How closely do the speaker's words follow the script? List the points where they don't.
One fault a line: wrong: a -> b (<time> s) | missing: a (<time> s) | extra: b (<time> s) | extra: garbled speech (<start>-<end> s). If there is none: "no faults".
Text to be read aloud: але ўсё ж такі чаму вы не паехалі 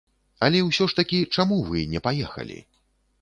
no faults